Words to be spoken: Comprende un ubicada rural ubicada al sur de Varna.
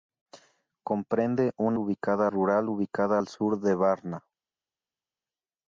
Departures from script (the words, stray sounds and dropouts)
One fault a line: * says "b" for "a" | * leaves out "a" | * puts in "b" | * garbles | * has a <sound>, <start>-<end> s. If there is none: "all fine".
all fine